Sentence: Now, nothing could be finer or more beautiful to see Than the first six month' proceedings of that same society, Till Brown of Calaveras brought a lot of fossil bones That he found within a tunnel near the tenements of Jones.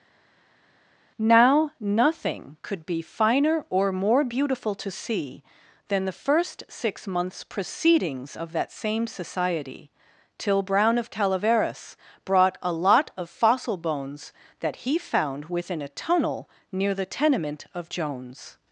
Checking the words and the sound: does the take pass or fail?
fail